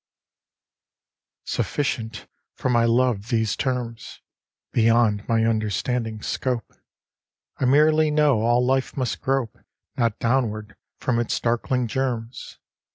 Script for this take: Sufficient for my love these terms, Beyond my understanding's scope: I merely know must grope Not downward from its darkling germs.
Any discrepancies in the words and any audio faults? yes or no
yes